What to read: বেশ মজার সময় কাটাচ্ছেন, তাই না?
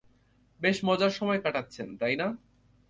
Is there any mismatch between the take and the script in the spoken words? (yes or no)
no